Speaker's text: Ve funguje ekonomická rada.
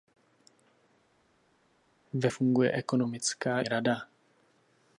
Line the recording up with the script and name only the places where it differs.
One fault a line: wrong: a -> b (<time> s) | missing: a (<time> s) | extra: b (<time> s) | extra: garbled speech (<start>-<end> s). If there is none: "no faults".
no faults